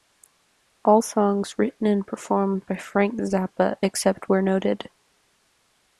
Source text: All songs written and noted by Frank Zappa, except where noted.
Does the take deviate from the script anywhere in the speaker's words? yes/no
yes